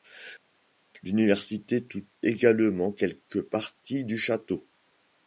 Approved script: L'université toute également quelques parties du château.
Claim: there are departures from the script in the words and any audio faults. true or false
false